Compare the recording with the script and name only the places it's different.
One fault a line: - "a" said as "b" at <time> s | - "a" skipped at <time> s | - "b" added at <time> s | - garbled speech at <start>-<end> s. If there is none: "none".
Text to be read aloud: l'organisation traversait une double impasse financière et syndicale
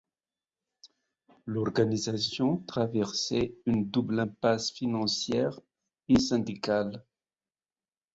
none